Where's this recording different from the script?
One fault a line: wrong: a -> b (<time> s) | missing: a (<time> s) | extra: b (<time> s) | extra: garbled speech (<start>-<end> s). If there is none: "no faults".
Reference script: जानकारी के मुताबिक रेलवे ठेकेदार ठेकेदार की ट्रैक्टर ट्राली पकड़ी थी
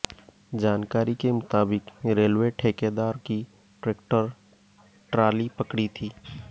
missing: ठेकेदार (3.2 s)